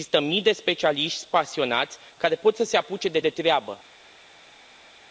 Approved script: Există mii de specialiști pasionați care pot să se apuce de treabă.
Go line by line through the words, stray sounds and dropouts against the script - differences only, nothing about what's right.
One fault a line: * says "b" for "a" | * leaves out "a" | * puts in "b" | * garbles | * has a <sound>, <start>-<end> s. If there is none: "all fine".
* puts in "de"